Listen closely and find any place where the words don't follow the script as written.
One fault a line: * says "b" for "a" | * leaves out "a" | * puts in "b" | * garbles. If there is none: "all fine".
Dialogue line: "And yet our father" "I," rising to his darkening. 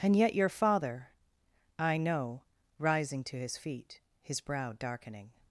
* says "your" for "our"
* puts in "know"
* puts in "feet his brow"